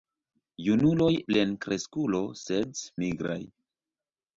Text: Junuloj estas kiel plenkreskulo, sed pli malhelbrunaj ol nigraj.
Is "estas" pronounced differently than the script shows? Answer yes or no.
yes